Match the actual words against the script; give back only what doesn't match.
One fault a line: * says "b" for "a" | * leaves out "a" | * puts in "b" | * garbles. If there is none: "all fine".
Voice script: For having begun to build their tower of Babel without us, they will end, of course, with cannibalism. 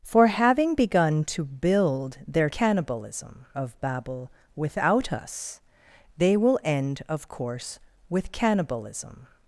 * says "cannibalism" for "tower"